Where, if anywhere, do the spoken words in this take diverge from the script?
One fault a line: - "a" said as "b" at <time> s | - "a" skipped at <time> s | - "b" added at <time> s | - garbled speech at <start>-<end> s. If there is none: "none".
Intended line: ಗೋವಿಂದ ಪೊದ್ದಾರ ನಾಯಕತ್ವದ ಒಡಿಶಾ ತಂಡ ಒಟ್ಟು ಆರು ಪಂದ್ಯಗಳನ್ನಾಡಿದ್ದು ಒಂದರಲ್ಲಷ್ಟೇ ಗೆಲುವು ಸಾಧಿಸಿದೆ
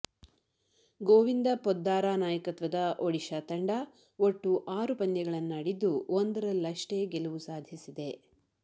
none